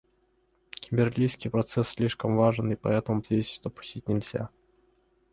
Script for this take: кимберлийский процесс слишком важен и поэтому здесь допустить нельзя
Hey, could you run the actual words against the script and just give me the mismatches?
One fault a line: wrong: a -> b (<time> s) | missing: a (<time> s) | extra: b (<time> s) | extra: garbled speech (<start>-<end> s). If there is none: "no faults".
no faults